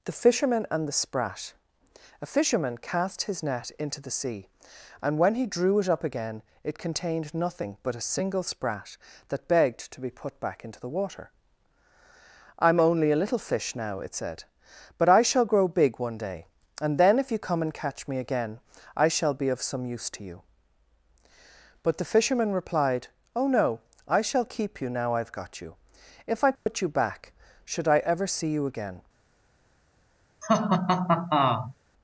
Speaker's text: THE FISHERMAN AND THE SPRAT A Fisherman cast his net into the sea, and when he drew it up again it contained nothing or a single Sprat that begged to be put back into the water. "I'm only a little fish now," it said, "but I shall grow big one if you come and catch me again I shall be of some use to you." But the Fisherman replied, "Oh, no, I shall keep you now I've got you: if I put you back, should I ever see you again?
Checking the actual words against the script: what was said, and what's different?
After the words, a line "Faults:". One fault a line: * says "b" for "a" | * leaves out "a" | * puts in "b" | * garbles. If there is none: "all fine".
THE FISHERMAN AND THE SPRAT A Fisherman cast his net into the sea, and when he drew it up again it contained nothing but a single Sprat that begged to be put back into the water. "I'm only a little fish now," it said, "but I shall grow big one day, and then if you come and catch me again I shall be of some use to you." But the Fisherman replied, "Oh, no, I shall keep you now I've got you: if I put you back, should I ever see you again?
Faults:
* says "but" for "or"
* puts in "day and then"